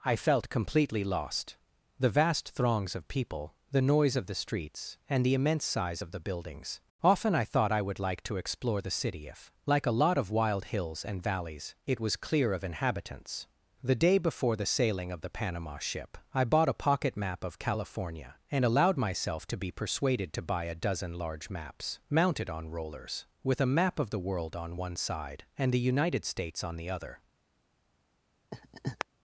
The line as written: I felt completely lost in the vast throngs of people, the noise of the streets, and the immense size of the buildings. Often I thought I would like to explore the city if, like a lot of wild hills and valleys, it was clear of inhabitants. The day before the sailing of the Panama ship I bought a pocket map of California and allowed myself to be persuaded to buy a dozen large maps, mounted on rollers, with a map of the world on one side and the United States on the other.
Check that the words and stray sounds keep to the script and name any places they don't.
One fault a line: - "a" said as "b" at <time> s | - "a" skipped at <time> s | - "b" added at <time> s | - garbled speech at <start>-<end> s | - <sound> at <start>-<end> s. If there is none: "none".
- "in" skipped at 1.6 s
- laugh at 28.5-29.1 s